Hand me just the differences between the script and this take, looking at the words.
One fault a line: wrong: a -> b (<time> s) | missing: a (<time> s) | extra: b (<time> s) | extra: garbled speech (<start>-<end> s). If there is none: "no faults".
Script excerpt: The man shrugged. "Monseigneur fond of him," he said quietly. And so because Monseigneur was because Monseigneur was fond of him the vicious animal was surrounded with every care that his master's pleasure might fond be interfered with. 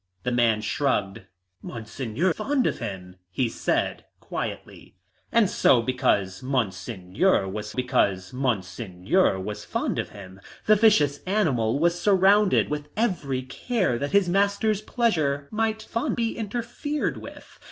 no faults